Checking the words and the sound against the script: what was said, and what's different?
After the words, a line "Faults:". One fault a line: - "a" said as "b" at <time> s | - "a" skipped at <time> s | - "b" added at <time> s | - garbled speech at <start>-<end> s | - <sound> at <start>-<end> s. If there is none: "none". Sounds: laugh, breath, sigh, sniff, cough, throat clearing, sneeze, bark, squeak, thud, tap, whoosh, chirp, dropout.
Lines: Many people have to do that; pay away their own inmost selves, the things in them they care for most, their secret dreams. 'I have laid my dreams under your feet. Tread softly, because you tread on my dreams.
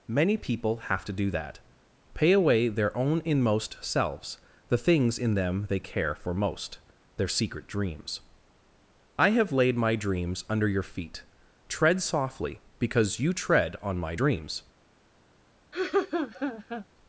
Many people have to do that; pay away their own inmost selves, the things in them they care for most, their secret dreams. 'I have laid my dreams under your feet. Tread softly, because you tread on my dreams.
Faults:
- laugh at 15.7-16.9 s